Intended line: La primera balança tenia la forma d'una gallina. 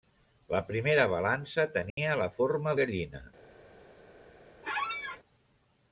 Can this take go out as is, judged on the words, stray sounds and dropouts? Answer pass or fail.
fail